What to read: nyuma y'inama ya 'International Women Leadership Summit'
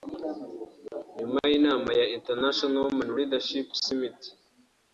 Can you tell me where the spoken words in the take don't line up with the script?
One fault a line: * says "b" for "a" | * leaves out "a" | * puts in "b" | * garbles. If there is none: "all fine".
all fine